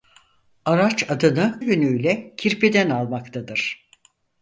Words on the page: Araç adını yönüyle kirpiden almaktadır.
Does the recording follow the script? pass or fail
pass